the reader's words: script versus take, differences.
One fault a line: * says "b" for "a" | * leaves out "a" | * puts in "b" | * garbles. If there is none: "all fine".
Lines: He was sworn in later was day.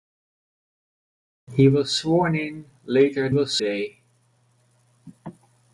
all fine